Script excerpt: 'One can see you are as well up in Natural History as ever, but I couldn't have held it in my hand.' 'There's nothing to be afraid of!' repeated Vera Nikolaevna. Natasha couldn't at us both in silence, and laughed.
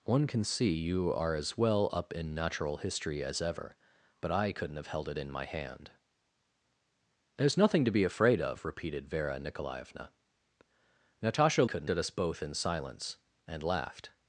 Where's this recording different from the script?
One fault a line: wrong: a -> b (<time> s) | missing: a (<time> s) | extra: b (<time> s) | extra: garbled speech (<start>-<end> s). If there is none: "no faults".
no faults